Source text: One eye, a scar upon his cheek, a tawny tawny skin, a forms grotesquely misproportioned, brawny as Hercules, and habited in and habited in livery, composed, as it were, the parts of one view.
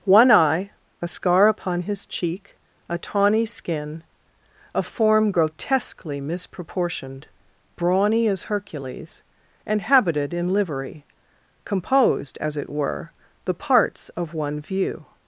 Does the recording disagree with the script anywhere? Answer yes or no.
yes